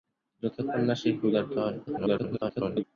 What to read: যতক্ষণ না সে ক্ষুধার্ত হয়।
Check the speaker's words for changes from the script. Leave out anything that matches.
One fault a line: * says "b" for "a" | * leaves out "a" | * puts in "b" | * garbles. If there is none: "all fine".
* garbles